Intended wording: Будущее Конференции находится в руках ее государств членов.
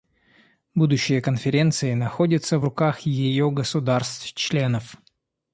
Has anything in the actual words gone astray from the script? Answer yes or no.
no